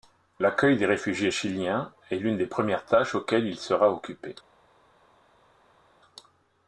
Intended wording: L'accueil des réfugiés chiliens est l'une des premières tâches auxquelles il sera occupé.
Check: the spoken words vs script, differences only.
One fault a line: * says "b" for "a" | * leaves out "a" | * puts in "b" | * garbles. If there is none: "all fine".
all fine